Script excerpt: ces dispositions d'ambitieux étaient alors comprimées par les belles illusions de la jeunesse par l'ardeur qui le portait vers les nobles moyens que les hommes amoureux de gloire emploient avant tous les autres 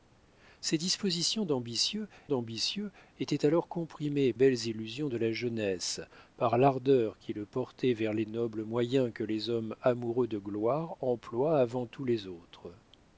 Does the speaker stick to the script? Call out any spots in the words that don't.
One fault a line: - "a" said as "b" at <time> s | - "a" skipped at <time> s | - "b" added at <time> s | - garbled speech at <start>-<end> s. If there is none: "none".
- "d'ambitieux" added at 2.3 s
- "par les" skipped at 4.3 s